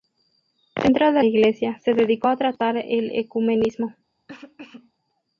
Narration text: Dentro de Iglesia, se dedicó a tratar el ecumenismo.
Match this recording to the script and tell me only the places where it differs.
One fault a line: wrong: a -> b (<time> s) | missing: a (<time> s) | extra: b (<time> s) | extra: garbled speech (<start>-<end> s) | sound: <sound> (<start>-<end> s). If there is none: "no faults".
sound: cough (4.3-4.9 s)